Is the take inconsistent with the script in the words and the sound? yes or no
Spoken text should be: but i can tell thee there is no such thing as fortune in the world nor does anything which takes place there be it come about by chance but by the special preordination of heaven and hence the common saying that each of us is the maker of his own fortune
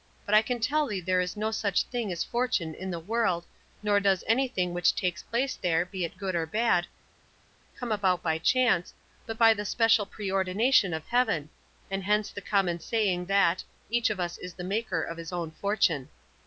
yes